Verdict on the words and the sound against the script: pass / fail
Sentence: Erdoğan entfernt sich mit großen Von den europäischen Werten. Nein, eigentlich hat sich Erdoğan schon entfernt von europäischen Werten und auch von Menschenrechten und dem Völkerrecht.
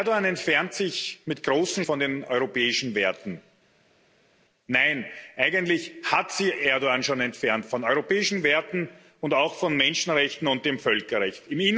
pass